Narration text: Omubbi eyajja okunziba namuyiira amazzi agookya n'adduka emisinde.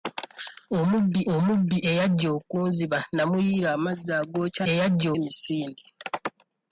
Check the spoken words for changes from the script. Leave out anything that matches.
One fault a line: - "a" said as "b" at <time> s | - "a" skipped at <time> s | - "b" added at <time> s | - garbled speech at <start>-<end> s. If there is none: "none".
- "omubbi" added at 1.3 s
- "n'adduka" said as "eyajja" at 4.7 s